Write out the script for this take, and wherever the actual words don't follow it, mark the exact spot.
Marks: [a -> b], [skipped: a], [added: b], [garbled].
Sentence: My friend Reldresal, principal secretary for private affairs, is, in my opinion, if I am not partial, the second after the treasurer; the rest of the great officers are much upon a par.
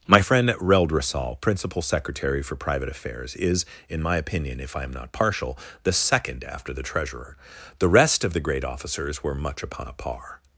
My friend Reldresal, principal secretary for private affairs, is, in my opinion, if I am not partial, the second after the treasurer; the rest of the great officers [are -> were] much upon a par.